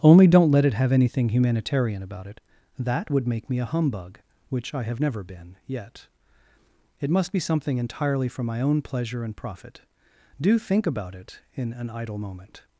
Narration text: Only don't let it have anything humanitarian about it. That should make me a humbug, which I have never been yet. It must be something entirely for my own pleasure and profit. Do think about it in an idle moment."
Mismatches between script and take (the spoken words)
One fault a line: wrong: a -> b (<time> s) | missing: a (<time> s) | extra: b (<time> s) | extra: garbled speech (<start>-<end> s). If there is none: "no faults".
wrong: should -> would (3.1 s)